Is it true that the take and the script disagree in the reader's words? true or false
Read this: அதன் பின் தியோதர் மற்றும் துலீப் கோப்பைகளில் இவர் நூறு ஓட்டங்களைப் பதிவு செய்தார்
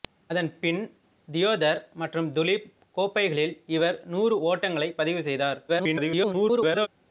true